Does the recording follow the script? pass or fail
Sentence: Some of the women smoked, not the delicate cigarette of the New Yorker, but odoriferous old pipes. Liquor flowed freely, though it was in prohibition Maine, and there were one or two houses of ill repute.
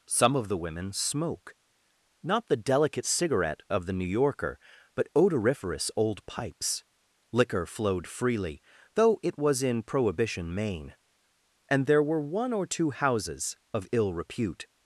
fail